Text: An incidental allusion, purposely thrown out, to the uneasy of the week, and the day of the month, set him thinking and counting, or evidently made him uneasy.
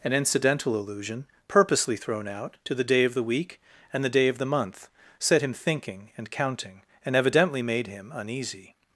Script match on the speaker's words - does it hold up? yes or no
no